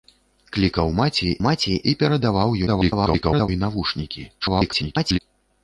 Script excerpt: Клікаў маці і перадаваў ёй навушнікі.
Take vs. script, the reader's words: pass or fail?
fail